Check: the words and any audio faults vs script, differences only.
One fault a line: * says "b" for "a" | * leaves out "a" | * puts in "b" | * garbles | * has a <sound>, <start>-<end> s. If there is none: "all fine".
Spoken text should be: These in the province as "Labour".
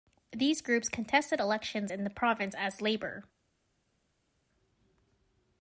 * puts in "groups contested elections"